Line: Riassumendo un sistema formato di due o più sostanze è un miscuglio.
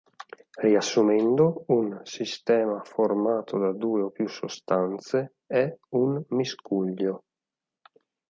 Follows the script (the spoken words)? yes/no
no